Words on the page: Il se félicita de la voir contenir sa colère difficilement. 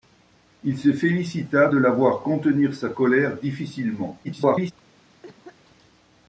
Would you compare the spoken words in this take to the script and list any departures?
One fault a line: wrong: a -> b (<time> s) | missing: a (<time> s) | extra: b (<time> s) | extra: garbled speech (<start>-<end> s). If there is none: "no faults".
extra: garbled speech (4.2-4.7 s)